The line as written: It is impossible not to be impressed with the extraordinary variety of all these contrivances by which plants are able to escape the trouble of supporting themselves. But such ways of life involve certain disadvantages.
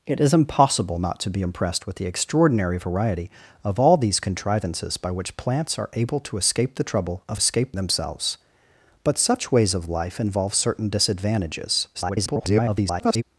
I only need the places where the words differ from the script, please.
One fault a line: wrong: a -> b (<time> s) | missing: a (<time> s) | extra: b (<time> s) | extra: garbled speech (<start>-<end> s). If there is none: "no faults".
wrong: supporting -> escape (7.4 s)
extra: garbled speech (11.9-13.2 s)